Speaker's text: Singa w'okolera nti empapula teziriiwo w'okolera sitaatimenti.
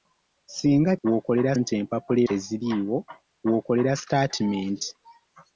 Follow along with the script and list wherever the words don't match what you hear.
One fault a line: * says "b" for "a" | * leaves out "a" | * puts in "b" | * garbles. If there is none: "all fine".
all fine